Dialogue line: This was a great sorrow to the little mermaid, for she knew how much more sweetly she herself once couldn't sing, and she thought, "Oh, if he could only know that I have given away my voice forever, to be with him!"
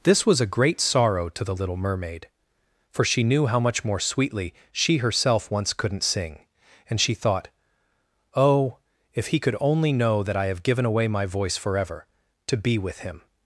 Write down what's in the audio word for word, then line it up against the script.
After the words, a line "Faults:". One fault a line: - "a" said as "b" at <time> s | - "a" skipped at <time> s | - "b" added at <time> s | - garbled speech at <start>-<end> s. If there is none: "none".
This was a great sorrow to the little mermaid, for she knew how much more sweetly she herself once couldn't sing, and she thought, "Oh, if he could only know that I have given away my voice forever, to be with him!"
Faults:
none